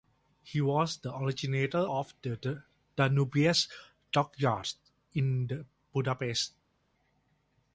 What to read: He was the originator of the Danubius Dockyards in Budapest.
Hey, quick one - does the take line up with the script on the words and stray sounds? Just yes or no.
yes